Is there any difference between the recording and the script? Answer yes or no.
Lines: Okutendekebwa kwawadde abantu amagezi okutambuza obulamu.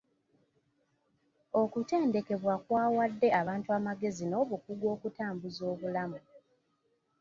yes